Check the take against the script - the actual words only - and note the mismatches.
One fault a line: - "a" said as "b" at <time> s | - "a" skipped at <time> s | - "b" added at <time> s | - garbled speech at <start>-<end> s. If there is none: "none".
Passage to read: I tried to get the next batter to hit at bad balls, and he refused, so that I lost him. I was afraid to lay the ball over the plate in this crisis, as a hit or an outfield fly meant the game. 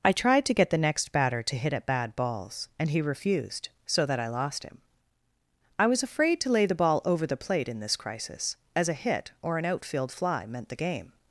none